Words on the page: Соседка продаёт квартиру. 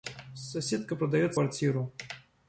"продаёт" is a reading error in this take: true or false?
false